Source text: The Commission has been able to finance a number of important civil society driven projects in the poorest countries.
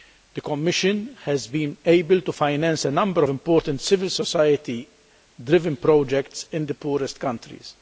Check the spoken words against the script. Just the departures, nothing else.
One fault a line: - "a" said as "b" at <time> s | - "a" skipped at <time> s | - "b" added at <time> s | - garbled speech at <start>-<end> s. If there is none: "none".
- "of" skipped at 3.2 s